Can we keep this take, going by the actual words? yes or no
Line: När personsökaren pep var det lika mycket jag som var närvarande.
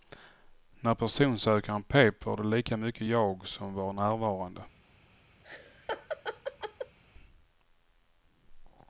yes